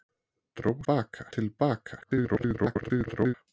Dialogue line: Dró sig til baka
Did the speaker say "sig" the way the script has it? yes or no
no